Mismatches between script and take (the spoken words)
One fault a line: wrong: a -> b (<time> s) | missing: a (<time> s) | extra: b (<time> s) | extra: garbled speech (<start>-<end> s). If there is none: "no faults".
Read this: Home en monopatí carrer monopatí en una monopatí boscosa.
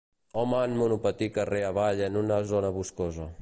wrong: monopatí -> avall (1.7 s)
wrong: monopatí -> zona (2.5 s)